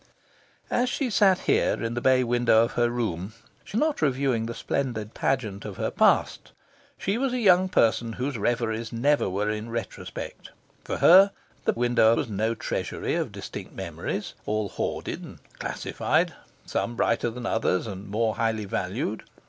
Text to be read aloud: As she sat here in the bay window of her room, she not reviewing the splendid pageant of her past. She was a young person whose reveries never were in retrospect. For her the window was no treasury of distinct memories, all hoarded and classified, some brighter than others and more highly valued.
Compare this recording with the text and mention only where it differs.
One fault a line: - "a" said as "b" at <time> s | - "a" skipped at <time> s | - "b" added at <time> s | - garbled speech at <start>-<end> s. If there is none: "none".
none